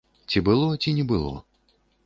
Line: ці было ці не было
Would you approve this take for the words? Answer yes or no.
yes